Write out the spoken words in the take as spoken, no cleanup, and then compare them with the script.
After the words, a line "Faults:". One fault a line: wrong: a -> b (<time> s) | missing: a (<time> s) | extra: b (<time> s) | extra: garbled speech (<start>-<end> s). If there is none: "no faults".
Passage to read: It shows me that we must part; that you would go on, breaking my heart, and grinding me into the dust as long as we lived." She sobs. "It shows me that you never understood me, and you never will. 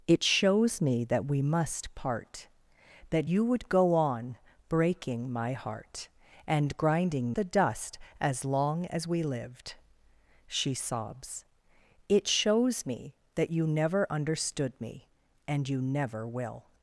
It shows me that we must part; that you would go on, breaking my heart, and grinding the dust as long as we lived." She sobs. "It shows me that you never understood me, and you never will.
Faults:
missing: me into (7.3 s)